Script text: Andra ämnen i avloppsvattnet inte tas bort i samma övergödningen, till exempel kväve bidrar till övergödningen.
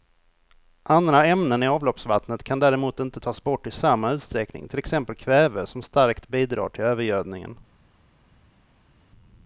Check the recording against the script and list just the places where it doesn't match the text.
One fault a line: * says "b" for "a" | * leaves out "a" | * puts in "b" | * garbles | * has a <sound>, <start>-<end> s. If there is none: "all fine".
* puts in "kan däremot"
* says "utsträckning" for "övergödningen"
* puts in "som starkt"